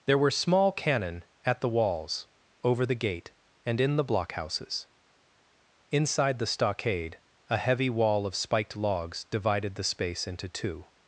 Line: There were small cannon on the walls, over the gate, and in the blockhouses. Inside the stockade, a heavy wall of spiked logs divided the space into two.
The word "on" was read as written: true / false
false